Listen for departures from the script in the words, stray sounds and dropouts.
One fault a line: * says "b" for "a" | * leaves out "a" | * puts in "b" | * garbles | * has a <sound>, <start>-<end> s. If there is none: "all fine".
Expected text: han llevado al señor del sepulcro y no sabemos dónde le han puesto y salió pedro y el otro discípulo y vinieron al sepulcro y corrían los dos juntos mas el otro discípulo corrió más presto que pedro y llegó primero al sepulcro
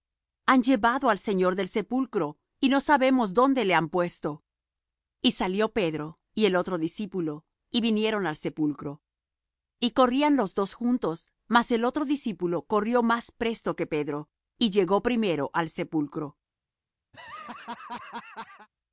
* has a laugh, 17.1-18.7 s